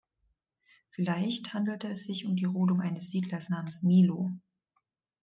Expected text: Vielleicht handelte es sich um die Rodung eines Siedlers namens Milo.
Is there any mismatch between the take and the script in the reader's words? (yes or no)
no